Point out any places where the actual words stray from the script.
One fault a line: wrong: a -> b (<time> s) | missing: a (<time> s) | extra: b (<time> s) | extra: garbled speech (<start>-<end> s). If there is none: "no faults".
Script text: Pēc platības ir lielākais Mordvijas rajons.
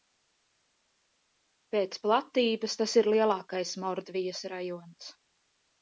extra: tas (2.8 s)